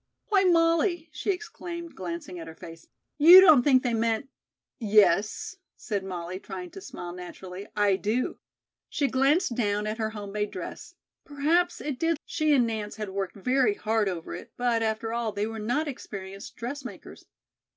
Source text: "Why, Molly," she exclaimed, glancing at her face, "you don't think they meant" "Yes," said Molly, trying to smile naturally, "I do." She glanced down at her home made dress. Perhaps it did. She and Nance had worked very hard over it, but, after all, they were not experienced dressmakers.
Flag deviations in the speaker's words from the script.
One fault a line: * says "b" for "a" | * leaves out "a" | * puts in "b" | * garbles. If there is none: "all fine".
all fine